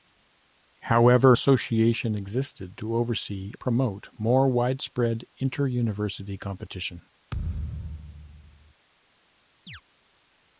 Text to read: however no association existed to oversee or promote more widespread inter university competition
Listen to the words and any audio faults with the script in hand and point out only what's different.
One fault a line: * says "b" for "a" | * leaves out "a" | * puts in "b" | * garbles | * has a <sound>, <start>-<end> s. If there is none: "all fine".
* leaves out "no"
* leaves out "or"
* has a thud, 7.3-8.7 s
* has a chirp, 9.7-9.8 s